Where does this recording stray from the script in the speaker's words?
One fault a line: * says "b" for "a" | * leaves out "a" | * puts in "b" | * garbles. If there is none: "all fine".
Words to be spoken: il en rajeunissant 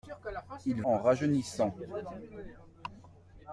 all fine